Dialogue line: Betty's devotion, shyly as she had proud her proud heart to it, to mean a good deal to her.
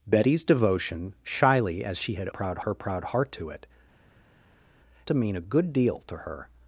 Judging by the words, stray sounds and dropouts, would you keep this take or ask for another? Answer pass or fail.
pass